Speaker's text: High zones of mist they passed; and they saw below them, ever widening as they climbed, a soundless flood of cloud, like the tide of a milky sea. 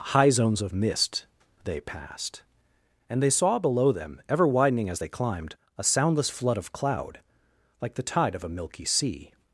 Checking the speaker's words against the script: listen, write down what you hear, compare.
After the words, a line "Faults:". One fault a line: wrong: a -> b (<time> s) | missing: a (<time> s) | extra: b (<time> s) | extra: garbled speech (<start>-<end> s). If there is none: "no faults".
High zones of mist they passed; and they saw below them, ever widening as they climbed, a soundless flood of cloud, like the tide of a milky sea.
Faults:
no faults